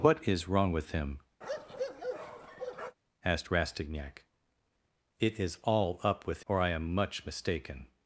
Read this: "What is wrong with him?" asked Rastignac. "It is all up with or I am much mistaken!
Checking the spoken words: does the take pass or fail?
pass